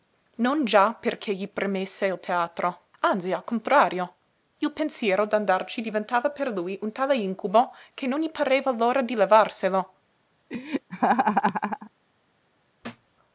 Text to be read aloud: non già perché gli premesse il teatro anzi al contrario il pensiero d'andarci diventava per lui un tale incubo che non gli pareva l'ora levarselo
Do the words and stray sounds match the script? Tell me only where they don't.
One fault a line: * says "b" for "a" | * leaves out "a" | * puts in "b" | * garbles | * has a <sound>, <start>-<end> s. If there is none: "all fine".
* puts in "di"
* has a laugh, 10.5-11.9 s
* has a thud, 12.8-13.1 s